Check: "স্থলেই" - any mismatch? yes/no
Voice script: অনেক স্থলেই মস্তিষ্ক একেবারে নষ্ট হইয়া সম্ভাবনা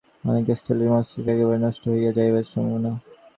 no